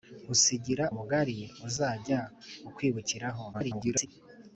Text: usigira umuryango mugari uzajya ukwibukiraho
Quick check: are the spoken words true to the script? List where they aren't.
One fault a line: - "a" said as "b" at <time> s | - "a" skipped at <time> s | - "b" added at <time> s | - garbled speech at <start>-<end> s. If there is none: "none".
- "umuryango" skipped at 0.9 s
- garbled speech at 3.5-4.1 s